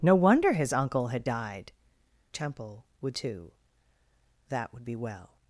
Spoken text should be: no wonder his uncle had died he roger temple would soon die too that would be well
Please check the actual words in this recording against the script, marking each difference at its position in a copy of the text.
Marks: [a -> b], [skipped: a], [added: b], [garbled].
no wonder his uncle had died [skipped: he roger] temple would [skipped: soon die] too that would be well